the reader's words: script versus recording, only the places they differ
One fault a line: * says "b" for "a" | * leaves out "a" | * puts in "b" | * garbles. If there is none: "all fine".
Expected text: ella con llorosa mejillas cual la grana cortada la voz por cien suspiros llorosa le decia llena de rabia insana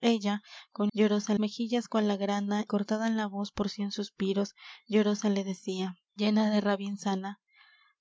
all fine